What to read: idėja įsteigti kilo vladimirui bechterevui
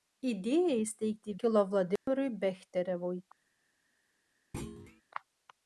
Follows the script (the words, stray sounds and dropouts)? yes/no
no